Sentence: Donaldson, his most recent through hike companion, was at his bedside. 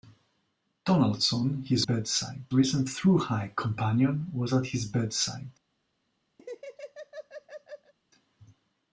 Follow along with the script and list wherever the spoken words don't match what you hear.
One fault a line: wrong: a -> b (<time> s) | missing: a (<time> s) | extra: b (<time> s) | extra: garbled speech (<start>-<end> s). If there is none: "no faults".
wrong: most -> bedside (1.8 s)